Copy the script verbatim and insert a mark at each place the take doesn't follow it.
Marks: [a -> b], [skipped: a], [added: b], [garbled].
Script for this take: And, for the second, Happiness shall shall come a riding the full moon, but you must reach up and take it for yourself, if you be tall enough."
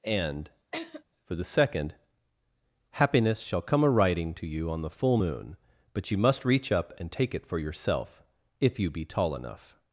And, for the second, Happiness shall [skipped: shall] come a riding [added: to you on] the full moon, but you must reach up and take it for yourself, if you be tall enough."